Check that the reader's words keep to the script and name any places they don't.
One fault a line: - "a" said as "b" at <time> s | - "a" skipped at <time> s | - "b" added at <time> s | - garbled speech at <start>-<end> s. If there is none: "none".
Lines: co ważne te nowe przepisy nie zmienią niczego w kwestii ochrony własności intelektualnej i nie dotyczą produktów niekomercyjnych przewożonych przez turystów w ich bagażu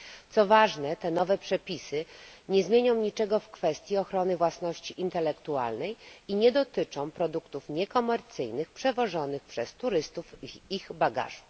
none